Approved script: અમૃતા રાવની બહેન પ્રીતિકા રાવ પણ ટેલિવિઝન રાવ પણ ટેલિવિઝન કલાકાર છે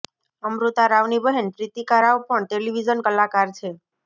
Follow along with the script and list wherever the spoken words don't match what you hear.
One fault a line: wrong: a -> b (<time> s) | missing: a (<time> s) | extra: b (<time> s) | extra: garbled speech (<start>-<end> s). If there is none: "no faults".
missing: રાવ પણ ટેલિવિઝન (3.0 s)